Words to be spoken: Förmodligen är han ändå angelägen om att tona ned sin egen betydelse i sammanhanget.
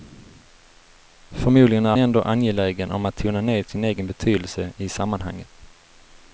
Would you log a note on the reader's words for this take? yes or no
yes